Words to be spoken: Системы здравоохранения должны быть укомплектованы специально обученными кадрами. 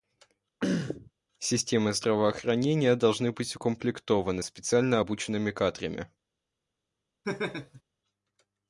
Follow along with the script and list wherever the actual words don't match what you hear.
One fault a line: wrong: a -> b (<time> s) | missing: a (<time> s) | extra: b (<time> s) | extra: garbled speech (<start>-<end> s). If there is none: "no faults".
no faults